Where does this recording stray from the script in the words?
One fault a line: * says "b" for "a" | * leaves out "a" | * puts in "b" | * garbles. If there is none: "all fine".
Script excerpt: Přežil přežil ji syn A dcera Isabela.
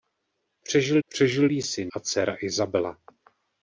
all fine